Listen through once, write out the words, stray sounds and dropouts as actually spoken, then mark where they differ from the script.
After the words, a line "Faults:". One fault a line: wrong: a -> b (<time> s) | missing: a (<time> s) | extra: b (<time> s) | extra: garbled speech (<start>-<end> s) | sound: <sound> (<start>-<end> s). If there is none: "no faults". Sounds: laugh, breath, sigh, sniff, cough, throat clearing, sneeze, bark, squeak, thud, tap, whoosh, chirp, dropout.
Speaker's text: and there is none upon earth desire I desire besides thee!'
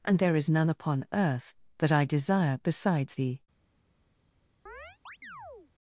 and there is none upon earth that I desire besides thee!'
Faults:
wrong: desire -> that (1.8 s)
sound: chirp (4.7-5.7 s)